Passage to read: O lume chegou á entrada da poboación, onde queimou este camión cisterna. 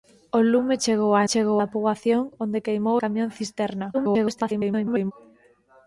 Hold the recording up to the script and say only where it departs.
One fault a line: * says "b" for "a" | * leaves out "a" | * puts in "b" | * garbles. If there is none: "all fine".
* says "chegou" for "entrada"
* leaves out "este"
* garbles